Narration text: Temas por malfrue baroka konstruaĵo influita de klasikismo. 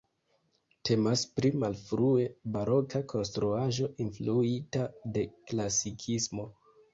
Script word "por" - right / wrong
wrong